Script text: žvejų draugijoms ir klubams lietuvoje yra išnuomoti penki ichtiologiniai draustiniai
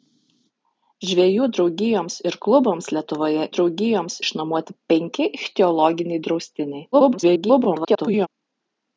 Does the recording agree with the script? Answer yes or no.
no